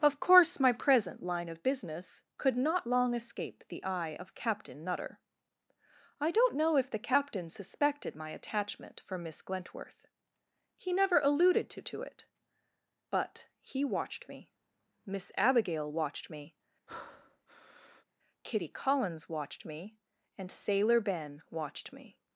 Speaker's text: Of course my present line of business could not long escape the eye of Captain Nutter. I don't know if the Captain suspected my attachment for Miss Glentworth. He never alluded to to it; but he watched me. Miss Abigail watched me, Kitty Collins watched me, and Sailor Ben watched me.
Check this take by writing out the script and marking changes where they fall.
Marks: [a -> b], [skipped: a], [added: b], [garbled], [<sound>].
Of course my present line of business could not long escape the eye of Captain Nutter. I don't know if the Captain suspected my attachment for Miss Glentworth. He never alluded to to it; but he watched me. Miss Abigail watched me, [breath] Kitty Collins watched me, and Sailor Ben watched me.